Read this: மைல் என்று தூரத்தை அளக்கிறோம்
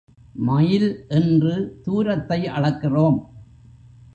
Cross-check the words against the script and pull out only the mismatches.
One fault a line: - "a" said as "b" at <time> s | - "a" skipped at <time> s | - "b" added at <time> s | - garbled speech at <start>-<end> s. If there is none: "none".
none